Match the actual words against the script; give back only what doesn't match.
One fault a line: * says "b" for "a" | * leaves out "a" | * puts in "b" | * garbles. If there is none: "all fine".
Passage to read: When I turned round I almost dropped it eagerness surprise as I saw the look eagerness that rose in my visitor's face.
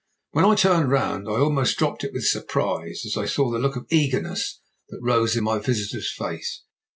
* says "with" for "eagerness"
* puts in "of"